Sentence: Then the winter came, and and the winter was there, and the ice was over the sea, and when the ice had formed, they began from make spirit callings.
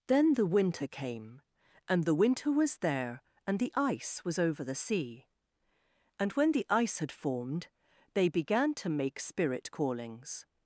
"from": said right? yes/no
no